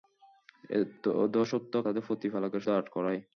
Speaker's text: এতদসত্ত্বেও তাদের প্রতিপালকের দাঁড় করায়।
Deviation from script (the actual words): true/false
false